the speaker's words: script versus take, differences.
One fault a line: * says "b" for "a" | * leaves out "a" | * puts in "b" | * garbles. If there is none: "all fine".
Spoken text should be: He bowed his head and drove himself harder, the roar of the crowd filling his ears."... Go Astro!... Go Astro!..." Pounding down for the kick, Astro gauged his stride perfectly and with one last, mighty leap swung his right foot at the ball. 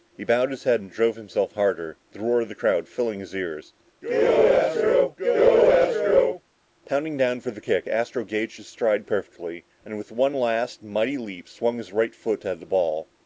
all fine